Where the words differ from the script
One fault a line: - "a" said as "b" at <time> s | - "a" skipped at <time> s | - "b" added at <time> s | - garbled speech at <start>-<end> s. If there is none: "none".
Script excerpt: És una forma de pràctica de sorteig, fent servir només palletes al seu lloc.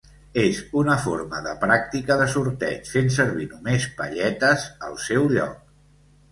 none